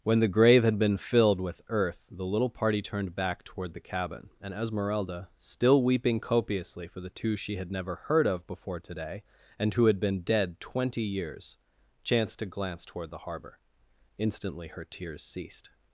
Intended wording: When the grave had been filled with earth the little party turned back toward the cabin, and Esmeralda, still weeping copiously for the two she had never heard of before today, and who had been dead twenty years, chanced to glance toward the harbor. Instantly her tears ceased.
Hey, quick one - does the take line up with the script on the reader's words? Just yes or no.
yes